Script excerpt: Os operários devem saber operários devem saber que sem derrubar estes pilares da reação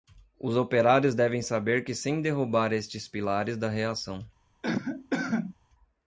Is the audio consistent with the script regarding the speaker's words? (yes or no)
no